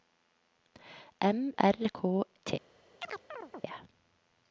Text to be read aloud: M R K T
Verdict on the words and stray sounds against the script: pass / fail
fail